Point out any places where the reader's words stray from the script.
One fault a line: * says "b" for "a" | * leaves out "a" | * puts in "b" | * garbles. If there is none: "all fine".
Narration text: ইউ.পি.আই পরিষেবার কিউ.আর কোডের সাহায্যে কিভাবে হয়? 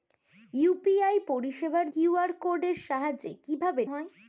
all fine